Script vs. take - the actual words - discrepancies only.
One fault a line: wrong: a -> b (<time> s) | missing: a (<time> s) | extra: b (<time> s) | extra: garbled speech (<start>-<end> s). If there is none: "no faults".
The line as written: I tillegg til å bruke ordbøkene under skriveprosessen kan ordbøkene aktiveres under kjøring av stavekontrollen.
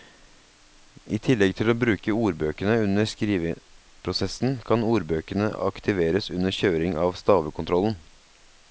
no faults